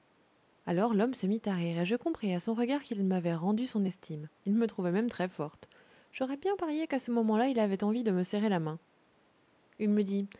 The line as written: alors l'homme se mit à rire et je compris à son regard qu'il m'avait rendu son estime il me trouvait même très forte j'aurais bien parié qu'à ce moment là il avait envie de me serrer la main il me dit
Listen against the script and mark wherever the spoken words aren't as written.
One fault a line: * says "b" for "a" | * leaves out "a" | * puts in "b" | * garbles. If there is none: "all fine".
all fine